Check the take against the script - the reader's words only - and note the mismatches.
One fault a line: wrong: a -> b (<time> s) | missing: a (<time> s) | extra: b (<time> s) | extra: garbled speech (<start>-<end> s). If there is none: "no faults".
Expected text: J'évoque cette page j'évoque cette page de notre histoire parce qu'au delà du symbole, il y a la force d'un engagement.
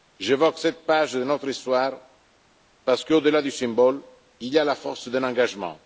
missing: j'évoque cette page (1.1 s)